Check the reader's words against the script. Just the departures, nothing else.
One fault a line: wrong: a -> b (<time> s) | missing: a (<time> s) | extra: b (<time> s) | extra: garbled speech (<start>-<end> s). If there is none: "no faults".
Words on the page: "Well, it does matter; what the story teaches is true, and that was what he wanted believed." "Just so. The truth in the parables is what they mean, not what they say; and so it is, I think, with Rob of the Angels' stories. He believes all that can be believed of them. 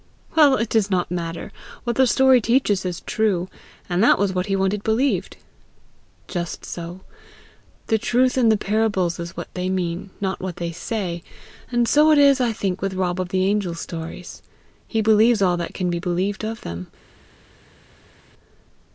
extra: not (0.9 s)